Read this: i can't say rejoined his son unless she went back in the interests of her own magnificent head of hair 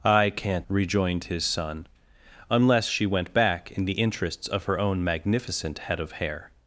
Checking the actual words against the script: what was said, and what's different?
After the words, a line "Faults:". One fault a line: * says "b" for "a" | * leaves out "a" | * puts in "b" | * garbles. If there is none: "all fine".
i can't rejoined his son unless she went back in the interests of her own magnificent head of hair
Faults:
* leaves out "say"